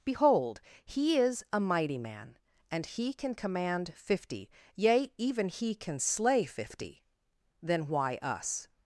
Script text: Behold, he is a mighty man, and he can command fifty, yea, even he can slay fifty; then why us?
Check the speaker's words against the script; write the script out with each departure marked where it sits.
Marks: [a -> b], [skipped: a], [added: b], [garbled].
Behold, he is a mighty man, and he can command fifty, yea, even he can slay fifty; then why us?